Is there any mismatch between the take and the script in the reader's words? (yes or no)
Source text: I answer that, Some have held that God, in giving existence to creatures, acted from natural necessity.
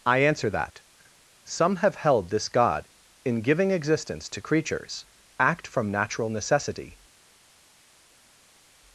yes